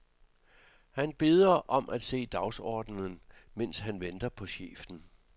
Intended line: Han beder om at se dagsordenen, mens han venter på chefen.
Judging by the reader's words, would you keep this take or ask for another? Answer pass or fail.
pass